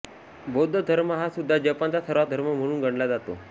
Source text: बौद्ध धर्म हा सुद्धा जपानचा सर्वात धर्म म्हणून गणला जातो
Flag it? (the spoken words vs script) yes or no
no